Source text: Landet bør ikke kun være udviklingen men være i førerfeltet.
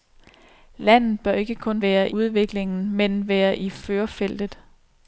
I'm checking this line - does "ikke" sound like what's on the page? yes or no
yes